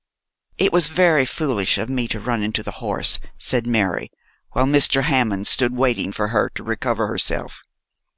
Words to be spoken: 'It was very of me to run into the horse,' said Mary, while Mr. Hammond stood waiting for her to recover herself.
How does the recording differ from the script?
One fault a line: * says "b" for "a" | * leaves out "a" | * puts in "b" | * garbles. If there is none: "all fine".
* puts in "foolish"